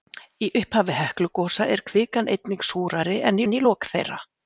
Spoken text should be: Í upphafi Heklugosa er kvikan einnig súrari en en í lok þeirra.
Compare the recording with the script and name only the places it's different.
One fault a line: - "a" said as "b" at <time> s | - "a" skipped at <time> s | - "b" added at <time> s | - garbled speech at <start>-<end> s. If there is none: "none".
none